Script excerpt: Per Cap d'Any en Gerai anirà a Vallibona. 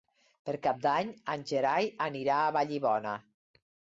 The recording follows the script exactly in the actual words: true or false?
true